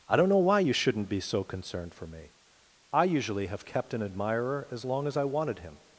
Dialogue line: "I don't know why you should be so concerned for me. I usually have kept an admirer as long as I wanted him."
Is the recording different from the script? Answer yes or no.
yes